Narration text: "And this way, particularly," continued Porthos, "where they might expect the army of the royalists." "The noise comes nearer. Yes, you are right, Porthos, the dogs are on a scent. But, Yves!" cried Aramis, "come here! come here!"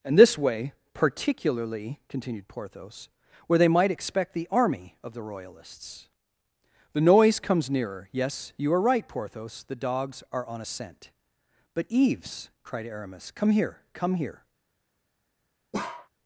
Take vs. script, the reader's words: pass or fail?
pass